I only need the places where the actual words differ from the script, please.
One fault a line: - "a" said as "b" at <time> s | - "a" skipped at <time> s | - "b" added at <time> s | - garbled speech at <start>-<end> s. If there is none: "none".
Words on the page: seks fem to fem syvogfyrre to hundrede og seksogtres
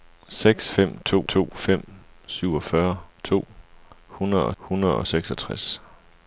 - "to" added at 1.3 s
- "hundrede og" added at 4.6 s